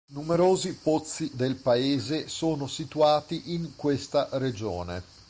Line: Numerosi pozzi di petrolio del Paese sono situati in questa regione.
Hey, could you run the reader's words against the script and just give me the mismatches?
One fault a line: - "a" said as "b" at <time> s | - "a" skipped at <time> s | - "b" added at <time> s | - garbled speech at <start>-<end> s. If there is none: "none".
- "di petrolio" skipped at 1.3 s